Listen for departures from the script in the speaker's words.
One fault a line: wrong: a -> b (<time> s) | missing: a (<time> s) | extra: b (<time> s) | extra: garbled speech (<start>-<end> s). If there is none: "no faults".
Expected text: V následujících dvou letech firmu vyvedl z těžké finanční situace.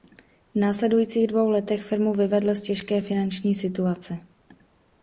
no faults